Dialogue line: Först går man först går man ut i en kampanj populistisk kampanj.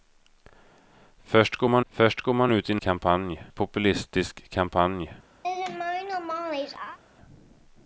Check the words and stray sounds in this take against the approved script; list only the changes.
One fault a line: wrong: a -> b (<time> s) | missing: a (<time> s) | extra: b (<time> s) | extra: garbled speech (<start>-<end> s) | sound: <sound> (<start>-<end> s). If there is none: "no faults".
sound: laugh (5.4-7.0 s)